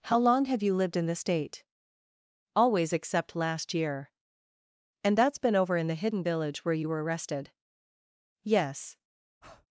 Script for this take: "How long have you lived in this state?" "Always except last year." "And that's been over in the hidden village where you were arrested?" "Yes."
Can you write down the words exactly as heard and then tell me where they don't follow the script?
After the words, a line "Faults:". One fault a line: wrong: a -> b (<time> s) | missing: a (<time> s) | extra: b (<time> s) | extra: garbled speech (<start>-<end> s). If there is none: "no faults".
"How long have you lived in this state?" "Always except last year." "And that's been over in the hidden village where you were arrested?" "Yes."
Faults:
no faults